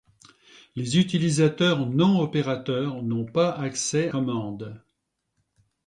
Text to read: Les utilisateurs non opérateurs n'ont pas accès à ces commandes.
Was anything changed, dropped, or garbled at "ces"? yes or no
yes